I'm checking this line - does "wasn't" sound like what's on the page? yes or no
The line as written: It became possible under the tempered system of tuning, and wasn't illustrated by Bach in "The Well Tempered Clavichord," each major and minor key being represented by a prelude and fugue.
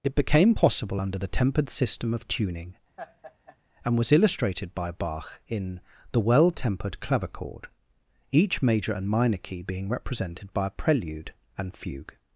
no